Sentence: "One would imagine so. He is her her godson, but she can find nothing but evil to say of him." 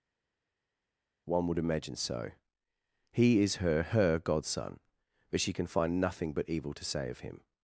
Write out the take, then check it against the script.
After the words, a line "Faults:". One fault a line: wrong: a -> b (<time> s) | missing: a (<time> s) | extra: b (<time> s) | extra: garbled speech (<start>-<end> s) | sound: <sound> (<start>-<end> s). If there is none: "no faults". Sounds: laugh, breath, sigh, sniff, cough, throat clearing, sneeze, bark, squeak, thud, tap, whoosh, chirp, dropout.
"One would imagine so. He is her her godson, but she can find nothing but evil to say of him."
Faults:
no faults